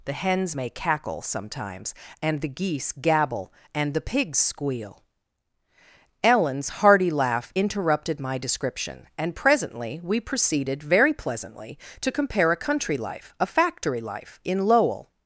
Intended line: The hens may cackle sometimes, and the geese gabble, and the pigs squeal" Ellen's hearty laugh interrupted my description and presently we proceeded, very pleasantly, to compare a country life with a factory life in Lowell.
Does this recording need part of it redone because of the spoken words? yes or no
yes